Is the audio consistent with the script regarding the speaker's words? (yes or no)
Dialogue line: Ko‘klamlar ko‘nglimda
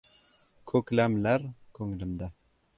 yes